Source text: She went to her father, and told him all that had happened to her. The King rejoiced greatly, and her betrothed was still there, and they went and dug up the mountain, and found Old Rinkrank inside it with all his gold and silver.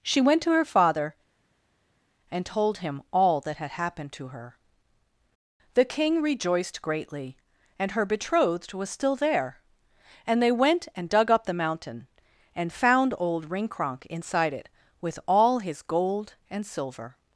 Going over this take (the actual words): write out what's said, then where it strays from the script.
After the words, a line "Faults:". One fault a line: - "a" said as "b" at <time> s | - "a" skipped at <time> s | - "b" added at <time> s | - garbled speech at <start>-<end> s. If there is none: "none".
She went to her father, and told him all that had happened to her. The King rejoiced greatly, and her betrothed was still there, and they went and dug up the mountain, and found Old Rinkrank inside it with all his gold and silver.
Faults:
none